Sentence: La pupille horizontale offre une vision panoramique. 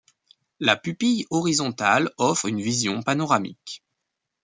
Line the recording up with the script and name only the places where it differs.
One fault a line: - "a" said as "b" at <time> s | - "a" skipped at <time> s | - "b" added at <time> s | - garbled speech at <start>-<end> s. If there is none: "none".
none